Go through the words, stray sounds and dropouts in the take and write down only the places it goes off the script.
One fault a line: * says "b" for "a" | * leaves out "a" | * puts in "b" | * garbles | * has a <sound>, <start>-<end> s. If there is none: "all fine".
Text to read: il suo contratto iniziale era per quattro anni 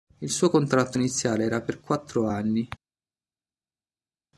all fine